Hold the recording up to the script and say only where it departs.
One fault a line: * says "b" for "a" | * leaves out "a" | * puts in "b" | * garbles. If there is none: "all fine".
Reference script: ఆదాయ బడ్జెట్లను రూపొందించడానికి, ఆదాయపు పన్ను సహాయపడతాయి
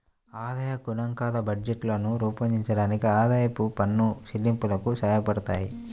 * puts in "గణాంకాలు"
* puts in "చెల్లింపులకు"